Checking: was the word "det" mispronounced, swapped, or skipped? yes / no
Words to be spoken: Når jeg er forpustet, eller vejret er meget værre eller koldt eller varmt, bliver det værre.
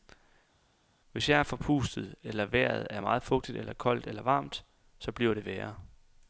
no